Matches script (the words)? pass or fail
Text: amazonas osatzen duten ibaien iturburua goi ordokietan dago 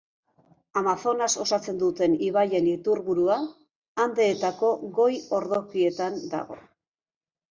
fail